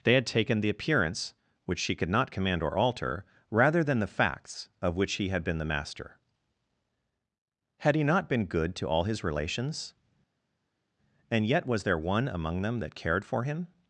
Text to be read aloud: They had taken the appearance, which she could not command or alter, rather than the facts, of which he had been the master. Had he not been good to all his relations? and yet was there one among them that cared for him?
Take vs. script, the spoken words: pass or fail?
pass